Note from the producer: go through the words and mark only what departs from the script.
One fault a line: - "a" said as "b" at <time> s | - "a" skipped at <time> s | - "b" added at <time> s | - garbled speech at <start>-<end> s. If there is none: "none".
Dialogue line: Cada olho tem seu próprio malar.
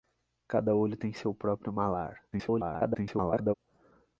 - garbled speech at 2.3-3.5 s